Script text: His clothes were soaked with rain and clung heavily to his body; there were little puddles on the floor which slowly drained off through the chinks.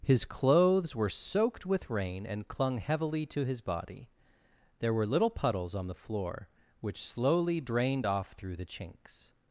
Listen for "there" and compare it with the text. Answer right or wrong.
right